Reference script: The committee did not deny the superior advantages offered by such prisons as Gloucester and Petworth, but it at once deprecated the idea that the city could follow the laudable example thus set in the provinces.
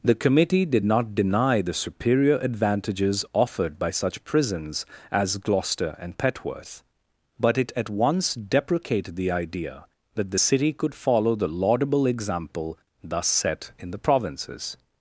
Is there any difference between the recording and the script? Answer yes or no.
no